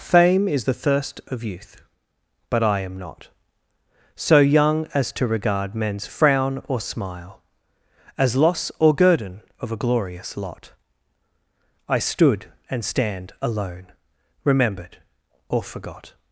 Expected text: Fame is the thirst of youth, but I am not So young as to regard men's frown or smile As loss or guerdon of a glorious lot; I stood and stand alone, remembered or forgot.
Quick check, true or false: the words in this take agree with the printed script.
true